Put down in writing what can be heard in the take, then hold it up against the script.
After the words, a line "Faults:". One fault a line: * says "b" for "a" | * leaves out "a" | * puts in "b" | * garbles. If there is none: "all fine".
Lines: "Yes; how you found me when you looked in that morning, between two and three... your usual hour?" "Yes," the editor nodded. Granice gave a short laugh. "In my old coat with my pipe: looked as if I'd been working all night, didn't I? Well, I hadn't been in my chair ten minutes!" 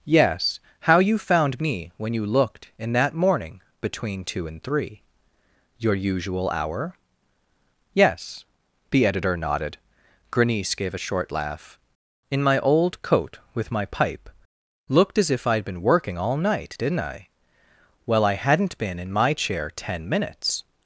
"Yes; how you found me when you looked in that morning, between two and three... your usual hour?" "Yes," the editor nodded. Granice gave a short laugh. "In my old coat with my pipe: looked as if I'd been working all night, didn't I? Well, I hadn't been in my chair ten minutes!"
Faults:
all fine